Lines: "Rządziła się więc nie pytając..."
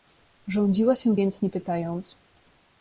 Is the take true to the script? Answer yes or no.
yes